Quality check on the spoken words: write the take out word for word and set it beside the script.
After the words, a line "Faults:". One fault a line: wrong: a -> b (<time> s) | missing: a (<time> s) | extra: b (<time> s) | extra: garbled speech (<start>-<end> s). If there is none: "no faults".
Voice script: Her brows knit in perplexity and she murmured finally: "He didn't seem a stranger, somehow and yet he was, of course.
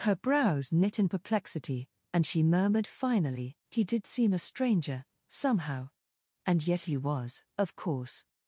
Her brows knit in perplexity and she murmured finally: "He did seem a stranger, somehow and yet he was, of course.
Faults:
wrong: didn't -> did (3.8 s)